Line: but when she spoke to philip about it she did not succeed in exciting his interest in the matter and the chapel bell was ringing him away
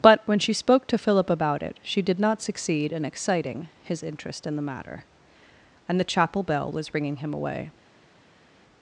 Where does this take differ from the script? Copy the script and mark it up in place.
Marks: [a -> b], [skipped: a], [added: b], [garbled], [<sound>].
but when she spoke to philip about it she did not succeed in exciting his interest in the matter and the chapel bell was ringing him away